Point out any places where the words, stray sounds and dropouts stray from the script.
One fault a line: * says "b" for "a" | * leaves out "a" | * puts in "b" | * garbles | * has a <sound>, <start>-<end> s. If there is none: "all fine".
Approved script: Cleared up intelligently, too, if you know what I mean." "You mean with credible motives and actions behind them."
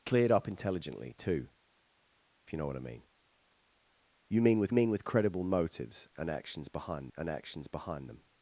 * puts in "mean with"
* puts in "and actions behind"